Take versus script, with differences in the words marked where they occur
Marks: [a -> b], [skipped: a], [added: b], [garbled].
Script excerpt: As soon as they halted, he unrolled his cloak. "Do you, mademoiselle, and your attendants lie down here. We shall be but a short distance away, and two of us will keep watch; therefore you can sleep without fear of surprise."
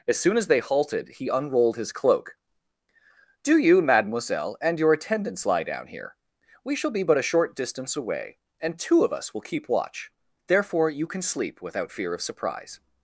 As soon as they halted, he unrolled his cloak. "Do you, mademoiselle, and your attendants lie down here. We shall be but a short distance away, and two of us will keep watch; therefore you can sleep without fear of surprise."